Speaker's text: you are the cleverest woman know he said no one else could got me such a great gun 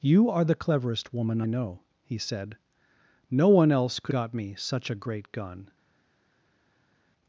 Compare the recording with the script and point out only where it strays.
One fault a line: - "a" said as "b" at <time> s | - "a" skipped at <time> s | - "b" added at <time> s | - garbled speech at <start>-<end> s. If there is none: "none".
none